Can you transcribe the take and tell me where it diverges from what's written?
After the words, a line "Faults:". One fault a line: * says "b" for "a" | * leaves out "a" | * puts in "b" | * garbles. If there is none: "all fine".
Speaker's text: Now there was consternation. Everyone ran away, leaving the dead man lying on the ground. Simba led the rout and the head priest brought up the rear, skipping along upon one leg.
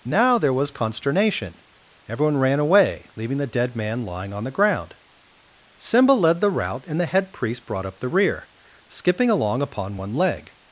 Now there was consternation. Everyone ran away, leaving the dead man lying on the ground. Simba led the rout and the head priest brought up the rear, skipping along upon one leg.
Faults:
all fine